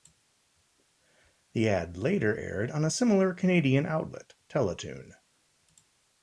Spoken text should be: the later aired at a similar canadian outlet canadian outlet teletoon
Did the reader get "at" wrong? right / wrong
wrong